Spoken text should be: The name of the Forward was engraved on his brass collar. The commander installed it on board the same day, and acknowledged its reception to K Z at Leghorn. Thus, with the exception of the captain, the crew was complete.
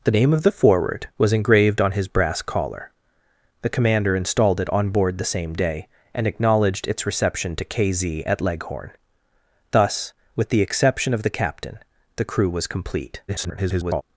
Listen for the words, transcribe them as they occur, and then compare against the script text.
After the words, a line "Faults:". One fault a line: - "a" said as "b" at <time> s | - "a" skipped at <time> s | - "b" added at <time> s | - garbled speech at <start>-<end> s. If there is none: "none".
The name of the Forward was engraved on his brass collar. The commander installed it on board the same day, and acknowledged its reception to K Z at Leghorn. Thus, with the exception of the captain, the crew was complete. [garbled]
Faults:
- garbled speech at 13.3-14.0 s